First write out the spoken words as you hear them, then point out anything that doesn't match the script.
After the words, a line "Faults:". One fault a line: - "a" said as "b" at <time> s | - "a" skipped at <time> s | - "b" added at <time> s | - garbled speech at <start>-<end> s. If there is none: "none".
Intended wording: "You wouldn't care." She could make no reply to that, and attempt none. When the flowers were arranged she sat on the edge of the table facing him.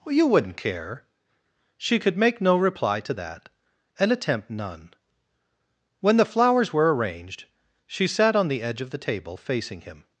"You wouldn't care." She could make no reply to that, and attempt none. When the flowers were arranged she sat on the edge of the table facing him.
Faults:
none